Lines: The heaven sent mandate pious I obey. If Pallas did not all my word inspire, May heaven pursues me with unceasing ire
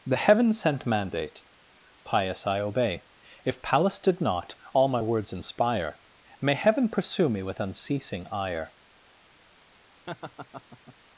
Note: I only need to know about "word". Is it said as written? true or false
false